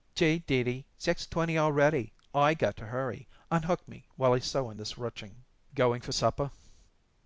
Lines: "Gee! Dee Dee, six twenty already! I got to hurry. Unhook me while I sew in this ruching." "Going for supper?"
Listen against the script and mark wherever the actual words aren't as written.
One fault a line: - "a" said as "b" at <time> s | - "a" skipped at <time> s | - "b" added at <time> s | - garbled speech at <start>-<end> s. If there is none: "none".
none